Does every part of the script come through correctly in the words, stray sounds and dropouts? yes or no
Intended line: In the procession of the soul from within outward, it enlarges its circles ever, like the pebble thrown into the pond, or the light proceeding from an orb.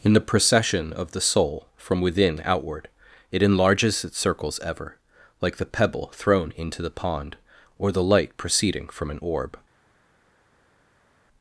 yes